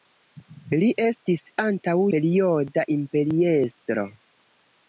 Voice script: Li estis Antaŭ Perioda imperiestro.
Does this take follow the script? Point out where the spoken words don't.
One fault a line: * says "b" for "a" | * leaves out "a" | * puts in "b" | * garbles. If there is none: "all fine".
all fine